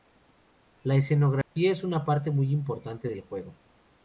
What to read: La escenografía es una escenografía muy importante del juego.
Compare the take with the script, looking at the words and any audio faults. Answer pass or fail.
fail